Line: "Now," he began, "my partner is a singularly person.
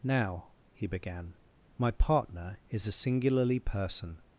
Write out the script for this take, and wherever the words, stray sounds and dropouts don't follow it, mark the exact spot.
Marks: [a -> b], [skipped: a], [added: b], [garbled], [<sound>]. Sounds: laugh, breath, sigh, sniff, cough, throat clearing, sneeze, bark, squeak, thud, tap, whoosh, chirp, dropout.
"Now," he began, "my partner is a singularly person.